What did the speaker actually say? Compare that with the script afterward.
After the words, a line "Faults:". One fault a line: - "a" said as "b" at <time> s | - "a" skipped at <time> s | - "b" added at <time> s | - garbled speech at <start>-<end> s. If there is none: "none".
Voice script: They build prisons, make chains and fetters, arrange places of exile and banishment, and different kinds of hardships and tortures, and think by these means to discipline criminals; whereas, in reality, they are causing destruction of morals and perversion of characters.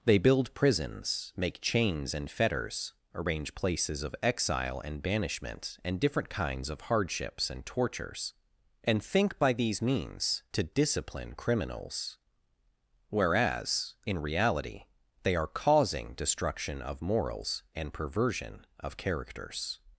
They build prisons, make chains and fetters, arrange places of exile and banishment, and different kinds of hardships and tortures, and think by these means to discipline criminals; whereas, in reality, they are causing destruction of morals and perversion of characters.
Faults:
none